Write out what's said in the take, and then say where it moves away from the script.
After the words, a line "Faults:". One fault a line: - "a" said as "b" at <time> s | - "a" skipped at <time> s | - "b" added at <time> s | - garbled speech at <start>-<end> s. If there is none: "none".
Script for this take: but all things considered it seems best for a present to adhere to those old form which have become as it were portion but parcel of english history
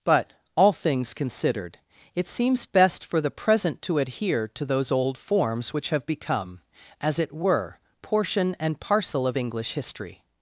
but all things considered it seems best for the present to adhere to those old forms which have become as it were portion and parcel of english history
Faults:
- "a" said as "the" at 3.2 s
- "form" said as "forms" at 5.2 s
- "but" said as "and" at 8.6 s